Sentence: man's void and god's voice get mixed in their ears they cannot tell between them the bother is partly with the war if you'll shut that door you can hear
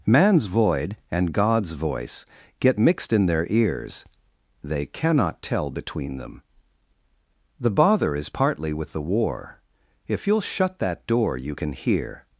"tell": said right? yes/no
yes